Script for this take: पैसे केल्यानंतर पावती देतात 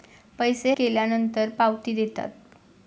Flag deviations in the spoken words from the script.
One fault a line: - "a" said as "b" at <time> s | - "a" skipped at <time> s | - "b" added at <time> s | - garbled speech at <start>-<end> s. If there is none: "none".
none